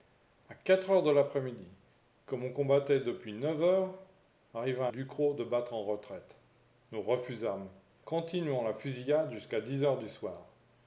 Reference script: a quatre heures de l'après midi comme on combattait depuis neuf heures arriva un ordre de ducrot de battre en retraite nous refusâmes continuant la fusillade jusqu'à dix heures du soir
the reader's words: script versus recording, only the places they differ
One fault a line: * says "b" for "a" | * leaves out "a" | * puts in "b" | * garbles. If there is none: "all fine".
* leaves out "un ordre de"